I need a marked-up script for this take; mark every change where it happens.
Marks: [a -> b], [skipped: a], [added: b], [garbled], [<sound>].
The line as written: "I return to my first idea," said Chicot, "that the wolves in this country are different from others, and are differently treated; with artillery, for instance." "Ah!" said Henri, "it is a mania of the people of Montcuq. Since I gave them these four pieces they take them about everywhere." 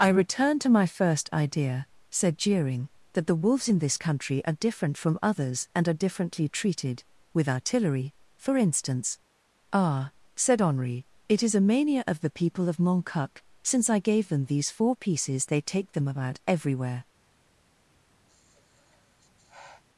"I return to my first idea," said [Chicot, -> Jeering] "that the wolves in this country are different from others, and are differently treated; with artillery, for instance." "Ah!" said Henri, "it is a mania of the people of Montcuq. Since I gave them these four pieces they take them about everywhere." [sigh]